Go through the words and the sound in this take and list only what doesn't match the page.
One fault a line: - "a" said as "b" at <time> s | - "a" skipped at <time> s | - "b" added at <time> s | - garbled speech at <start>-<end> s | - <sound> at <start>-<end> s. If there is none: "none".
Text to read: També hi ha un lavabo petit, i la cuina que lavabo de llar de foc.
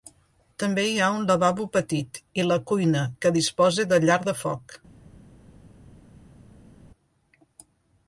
- "lavabo" said as "disposa" at 3.4 s